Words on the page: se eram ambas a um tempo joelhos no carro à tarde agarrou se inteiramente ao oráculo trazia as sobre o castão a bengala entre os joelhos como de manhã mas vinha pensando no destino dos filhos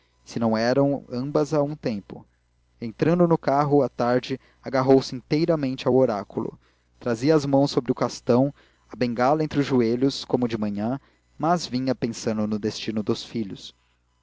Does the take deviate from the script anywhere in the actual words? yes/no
yes